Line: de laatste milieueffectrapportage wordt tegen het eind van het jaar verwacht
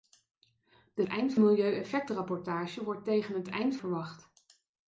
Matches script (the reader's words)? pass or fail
fail